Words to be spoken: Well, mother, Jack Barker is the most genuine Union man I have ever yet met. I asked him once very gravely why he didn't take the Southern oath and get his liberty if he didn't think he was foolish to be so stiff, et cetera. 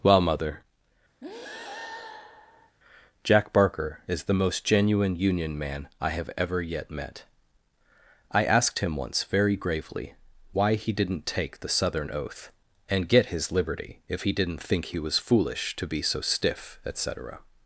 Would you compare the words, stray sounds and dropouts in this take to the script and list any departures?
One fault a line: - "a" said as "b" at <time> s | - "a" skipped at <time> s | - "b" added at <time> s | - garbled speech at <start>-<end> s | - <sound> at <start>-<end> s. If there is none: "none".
- breath at 1.2-2.8 s